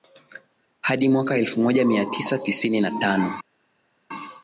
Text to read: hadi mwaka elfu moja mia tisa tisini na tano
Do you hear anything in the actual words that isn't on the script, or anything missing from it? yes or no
no